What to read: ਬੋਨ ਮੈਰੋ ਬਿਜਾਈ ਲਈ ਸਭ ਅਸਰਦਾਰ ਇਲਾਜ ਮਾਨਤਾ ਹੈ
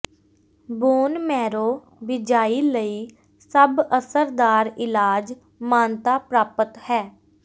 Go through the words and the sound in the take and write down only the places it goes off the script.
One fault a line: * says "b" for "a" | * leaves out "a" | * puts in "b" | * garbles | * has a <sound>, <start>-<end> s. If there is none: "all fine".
* puts in "ਪ੍ਰਾਪਤ"